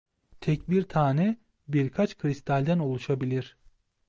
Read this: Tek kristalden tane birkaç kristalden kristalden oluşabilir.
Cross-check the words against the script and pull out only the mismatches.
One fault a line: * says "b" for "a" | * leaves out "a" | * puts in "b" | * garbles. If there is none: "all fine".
* says "bir" for "kristalden"
* leaves out "kristalden"